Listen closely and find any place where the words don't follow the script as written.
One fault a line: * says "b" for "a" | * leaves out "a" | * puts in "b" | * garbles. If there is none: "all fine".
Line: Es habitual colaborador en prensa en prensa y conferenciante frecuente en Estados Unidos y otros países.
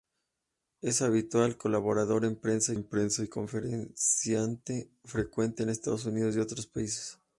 all fine